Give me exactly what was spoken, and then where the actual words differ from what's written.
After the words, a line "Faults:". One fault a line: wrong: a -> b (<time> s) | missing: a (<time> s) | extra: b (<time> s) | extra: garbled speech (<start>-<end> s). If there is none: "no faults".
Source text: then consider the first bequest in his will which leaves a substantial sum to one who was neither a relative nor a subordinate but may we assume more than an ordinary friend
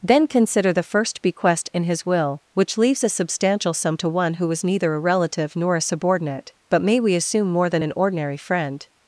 then consider the first bequest in his will which leaves a substantial sum to one who was neither a relative nor a subordinate but may we assume more than an ordinary friend
Faults:
no faults